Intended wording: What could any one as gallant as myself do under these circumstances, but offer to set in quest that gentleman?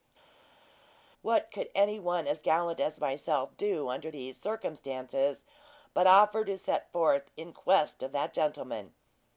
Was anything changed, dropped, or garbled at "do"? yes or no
no